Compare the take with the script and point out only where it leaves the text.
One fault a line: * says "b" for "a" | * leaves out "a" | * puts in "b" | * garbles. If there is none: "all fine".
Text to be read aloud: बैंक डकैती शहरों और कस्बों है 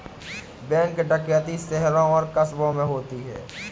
* puts in "में होती"